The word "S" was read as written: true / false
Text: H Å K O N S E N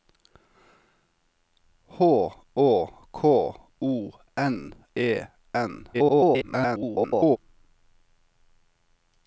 false